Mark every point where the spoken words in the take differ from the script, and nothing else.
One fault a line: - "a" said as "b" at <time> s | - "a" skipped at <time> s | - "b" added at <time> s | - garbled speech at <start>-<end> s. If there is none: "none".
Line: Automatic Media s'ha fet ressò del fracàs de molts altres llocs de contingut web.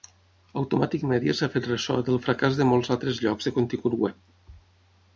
none